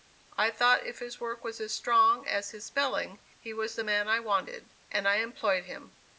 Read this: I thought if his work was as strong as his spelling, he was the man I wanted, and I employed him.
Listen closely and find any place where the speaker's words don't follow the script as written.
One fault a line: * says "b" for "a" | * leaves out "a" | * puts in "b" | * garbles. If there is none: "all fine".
all fine